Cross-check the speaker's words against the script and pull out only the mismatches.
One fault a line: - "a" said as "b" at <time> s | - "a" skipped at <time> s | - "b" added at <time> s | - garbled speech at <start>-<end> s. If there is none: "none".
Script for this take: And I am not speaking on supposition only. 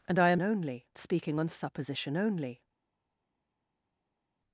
- "not" said as "only" at 0.4 s